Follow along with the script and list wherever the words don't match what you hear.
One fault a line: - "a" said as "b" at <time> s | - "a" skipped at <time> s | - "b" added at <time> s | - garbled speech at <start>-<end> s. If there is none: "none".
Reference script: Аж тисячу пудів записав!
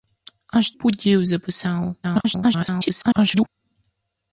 - "тисячу" skipped at 0.7 s
- garbled speech at 2.0-3.5 s